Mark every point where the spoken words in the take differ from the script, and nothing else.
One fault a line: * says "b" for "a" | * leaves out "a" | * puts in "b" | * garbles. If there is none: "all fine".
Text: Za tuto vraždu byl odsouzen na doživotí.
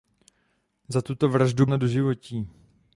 * leaves out "byl odsouzen"